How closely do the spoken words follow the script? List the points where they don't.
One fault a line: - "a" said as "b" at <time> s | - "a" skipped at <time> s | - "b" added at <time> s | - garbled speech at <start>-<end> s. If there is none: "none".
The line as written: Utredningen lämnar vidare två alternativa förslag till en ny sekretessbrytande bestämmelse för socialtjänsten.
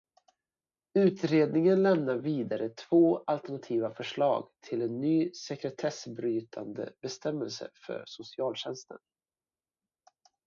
none